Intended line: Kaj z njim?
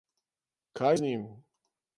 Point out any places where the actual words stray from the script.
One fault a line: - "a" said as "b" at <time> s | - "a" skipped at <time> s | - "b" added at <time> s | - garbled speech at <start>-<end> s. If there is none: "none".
none